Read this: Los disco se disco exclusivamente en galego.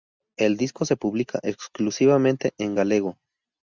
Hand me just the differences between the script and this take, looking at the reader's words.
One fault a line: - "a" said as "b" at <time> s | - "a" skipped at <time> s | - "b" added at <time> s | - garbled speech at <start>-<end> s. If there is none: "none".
- "Los" said as "El" at 0.3 s
- "disco" said as "publica" at 1.0 s